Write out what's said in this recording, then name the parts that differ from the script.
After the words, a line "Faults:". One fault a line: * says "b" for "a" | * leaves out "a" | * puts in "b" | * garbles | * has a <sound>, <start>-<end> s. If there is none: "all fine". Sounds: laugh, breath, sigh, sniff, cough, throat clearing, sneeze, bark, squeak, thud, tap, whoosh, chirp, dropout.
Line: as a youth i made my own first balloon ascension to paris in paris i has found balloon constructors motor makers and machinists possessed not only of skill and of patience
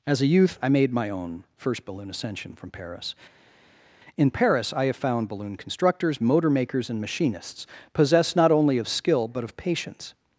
as a youth i made my own first balloon ascension from paris in paris i have found balloon constructors motor makers and machinists possessed not only of skill but of patience
Faults:
* says "from" for "to"
* says "have" for "has"
* says "but" for "and"